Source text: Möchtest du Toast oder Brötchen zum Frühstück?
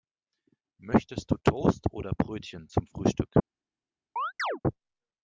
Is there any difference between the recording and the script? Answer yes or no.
no